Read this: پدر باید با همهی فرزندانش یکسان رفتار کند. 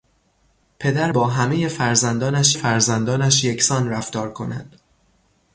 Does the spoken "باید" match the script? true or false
false